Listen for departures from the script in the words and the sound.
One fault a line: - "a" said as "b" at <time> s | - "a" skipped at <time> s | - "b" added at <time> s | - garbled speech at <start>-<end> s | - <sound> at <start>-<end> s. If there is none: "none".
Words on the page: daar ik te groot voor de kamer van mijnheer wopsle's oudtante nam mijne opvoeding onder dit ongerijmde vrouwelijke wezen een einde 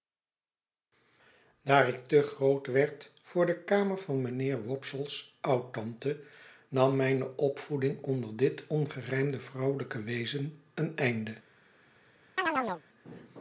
- "werd" added at 2.7 s
- chirp at 12.4-12.8 s